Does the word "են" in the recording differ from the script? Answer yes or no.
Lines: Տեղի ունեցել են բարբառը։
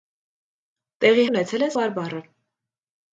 no